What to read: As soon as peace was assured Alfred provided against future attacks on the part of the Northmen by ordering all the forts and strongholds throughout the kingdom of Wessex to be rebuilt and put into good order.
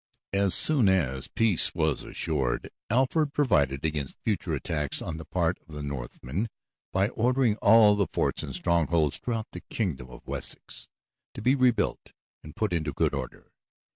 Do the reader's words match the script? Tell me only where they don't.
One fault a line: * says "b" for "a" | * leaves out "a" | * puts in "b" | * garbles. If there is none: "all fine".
all fine